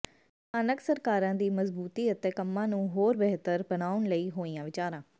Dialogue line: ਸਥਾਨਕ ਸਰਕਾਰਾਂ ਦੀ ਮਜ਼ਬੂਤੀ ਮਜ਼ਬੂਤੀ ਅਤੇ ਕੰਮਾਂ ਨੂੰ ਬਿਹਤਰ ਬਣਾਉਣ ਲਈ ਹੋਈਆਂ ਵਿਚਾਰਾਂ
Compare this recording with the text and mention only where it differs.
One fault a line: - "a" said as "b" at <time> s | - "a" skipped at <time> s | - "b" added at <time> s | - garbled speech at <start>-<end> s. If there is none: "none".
- "ਮਜ਼ਬੂਤੀ" skipped at 2.1 s
- "ਹੋਰ" added at 2.9 s